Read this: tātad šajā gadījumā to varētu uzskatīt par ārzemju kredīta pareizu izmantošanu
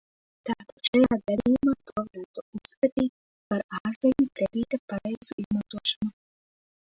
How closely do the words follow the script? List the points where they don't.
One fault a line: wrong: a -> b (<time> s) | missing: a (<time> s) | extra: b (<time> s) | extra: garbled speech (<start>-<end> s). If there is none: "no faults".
no faults